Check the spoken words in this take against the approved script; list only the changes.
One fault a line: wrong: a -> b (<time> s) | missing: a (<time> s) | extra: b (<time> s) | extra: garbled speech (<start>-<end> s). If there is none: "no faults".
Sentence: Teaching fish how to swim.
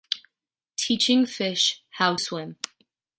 missing: to (2.1 s)